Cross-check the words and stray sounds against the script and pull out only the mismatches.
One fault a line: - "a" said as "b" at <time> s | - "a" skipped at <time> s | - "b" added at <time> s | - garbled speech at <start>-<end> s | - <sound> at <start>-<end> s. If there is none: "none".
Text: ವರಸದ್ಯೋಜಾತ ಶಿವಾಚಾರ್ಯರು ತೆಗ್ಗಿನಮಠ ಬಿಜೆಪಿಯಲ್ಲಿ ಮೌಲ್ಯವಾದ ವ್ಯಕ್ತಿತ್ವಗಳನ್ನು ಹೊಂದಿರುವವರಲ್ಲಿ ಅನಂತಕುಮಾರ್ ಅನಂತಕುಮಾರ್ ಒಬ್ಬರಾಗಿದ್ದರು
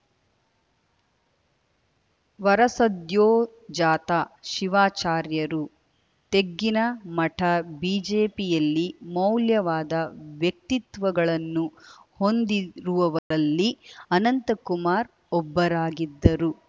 - dropout at 13.2-13.3 s
- "ಅನಂತಕುಮಾರ್" skipped at 15.1 s